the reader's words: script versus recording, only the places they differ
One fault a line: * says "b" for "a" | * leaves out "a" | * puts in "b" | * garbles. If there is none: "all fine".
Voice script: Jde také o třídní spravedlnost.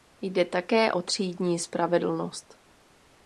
all fine